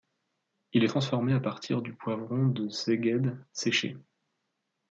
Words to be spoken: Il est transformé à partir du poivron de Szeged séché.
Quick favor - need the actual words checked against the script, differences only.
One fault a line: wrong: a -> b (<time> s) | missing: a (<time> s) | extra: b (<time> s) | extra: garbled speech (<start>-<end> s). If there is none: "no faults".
no faults